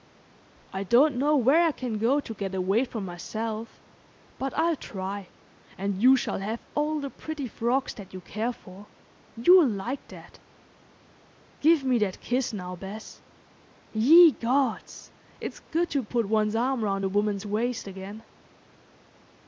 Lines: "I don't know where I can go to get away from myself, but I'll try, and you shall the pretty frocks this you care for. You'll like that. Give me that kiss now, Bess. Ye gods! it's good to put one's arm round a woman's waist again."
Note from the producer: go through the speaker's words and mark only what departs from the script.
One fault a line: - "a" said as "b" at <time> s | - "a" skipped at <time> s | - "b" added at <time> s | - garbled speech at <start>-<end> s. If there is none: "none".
- "have all" added at 6.4 s
- "this" said as "that" at 7.9 s